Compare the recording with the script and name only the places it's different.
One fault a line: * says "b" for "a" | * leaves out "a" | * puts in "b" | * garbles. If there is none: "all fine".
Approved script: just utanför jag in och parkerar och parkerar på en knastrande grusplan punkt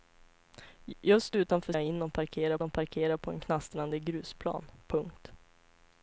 all fine